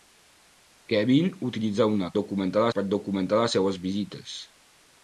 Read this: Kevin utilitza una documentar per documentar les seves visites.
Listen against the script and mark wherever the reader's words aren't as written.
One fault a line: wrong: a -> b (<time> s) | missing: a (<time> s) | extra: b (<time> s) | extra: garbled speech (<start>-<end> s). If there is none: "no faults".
no faults